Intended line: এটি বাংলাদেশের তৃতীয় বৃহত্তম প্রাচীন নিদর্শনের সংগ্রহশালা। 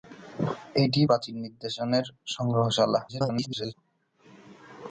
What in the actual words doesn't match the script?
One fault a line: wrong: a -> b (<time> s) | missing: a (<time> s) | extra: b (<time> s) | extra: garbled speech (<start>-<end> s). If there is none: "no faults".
missing: বাংলাদেশের তৃতীয় বৃহত্তম (1.0 s)
extra: garbled speech (3.1-3.7 s)